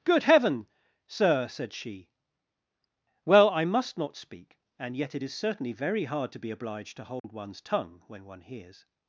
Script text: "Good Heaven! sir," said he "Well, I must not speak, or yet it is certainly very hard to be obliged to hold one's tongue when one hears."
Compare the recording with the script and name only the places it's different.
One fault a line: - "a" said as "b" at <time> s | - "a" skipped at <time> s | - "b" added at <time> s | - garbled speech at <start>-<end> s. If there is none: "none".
- "he" said as "she" at 1.7 s
- "or" said as "and" at 4.8 s